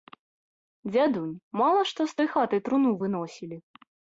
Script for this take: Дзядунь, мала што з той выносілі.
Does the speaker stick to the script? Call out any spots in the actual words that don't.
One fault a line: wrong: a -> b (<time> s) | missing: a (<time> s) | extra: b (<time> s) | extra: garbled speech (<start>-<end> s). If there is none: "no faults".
extra: хаты труну (2.3 s)